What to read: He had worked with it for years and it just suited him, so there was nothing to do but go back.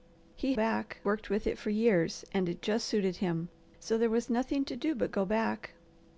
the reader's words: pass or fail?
fail